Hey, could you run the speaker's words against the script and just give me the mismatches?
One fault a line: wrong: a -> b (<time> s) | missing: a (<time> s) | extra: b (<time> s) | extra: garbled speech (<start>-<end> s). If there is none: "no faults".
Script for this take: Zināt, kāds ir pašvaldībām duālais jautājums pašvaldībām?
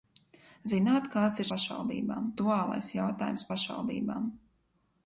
no faults